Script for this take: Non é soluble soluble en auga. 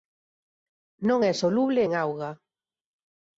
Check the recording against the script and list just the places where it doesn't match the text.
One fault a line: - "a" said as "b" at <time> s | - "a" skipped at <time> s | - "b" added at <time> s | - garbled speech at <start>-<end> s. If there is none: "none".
- "soluble" skipped at 1.8 s